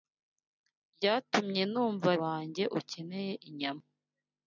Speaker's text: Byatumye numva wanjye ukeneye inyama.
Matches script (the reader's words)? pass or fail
pass